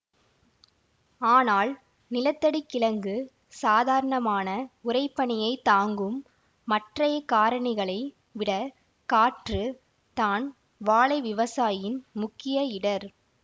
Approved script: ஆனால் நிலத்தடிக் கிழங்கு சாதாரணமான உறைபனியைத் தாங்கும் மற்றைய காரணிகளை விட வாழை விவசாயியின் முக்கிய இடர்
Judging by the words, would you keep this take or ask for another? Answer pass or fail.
fail